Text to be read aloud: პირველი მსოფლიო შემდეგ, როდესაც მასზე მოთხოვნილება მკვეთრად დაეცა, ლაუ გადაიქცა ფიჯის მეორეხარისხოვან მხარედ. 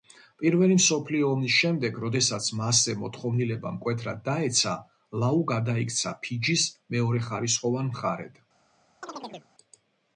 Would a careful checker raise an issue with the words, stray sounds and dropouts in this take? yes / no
yes